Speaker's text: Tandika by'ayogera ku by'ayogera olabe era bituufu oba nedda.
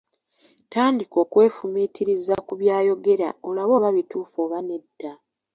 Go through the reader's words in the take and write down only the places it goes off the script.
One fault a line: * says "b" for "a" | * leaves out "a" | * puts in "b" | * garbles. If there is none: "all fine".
* says "okwefumiitiriza" for "by'ayogera"
* says "oba" for "era"